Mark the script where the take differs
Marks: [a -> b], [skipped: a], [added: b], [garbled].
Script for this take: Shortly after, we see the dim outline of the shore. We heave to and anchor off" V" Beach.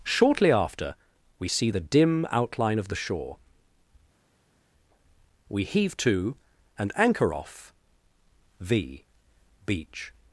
Shortly after, we see the dim outline of the shore. We heave to and anchor off" V" Beach.